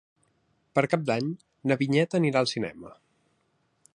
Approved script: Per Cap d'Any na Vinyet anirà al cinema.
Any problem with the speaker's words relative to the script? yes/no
no